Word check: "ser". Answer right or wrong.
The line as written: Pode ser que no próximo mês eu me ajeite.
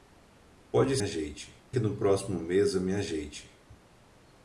wrong